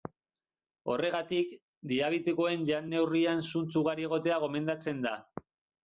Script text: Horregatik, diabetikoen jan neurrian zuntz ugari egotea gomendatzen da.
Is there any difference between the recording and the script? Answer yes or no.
no